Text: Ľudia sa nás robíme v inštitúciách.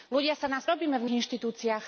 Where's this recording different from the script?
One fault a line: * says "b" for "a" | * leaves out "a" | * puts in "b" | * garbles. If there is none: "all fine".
all fine